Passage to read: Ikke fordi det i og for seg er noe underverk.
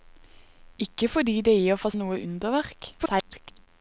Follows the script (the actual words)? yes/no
no